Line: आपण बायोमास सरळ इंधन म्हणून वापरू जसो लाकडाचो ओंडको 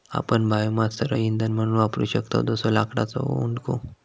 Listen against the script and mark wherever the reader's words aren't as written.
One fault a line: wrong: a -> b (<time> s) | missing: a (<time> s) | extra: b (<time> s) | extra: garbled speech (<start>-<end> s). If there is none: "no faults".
extra: शकतव (2.1 s)